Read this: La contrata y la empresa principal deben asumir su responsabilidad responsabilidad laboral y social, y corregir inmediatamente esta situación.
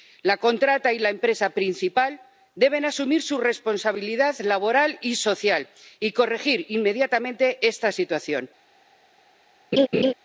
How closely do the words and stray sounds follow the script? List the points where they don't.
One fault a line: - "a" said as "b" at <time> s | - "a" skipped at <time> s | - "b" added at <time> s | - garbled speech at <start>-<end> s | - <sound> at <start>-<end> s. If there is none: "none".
- "responsabilidad" skipped at 4.4 s
- laugh at 9.7-10.1 s